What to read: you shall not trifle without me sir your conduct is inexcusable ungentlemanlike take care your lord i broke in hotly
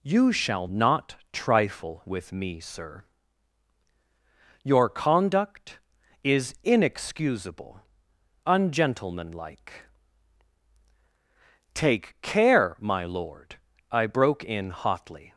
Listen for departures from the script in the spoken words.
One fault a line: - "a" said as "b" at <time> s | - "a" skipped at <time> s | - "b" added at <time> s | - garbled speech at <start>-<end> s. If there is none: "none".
- "without" said as "with" at 2.0 s
- "your" said as "my" at 12.8 s